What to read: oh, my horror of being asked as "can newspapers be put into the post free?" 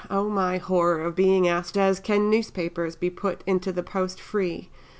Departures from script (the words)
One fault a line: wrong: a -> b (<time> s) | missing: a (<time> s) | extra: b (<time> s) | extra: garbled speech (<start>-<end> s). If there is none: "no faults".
no faults